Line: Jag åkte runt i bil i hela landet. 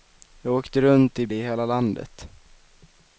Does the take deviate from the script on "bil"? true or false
true